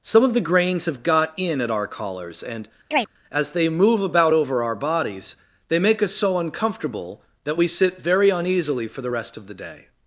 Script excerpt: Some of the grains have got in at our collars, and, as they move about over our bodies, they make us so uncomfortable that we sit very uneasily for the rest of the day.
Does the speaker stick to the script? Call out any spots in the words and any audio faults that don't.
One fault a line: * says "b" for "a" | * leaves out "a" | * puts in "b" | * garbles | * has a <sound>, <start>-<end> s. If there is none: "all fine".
* has a chirp, 2.9-3.1 s